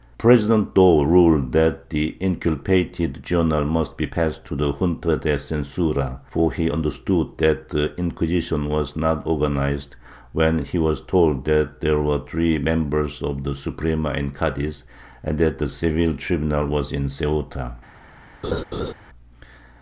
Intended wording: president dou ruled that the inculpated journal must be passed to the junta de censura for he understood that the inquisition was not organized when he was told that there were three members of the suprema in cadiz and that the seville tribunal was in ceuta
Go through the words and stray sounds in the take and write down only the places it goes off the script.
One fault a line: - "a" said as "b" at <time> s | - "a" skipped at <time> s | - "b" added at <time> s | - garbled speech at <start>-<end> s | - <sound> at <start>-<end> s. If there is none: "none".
- laugh at 18.4-18.9 s